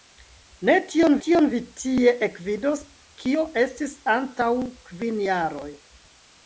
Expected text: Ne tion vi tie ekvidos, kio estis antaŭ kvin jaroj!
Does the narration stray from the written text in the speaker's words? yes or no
yes